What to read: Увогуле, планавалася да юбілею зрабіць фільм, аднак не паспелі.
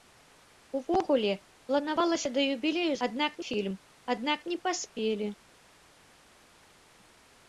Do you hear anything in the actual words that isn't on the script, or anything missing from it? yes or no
yes